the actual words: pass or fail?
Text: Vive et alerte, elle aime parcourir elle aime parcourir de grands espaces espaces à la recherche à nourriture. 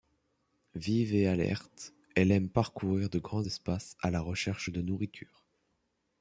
fail